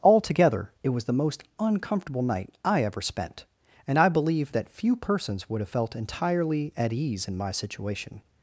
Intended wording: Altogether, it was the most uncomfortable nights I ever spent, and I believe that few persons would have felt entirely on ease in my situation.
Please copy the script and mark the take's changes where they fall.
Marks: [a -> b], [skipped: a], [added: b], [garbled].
Altogether, it was the most uncomfortable [nights -> night] I ever spent, and I believe that few persons would have felt entirely [on -> at] ease in my situation.